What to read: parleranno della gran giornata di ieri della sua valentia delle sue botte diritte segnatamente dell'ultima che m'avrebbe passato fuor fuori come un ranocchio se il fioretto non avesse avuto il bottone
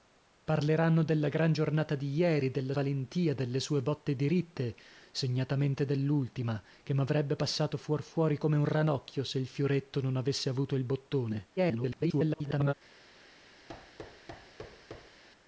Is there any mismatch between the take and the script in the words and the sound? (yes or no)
yes